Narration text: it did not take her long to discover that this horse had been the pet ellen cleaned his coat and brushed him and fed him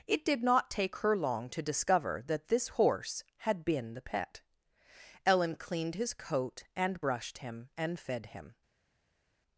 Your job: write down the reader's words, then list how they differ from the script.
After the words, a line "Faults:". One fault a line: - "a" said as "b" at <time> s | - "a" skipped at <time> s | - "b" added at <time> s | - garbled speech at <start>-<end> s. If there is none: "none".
it did not take her long to discover that this horse had been the pet ellen cleaned his coat and brushed him and fed him
Faults:
none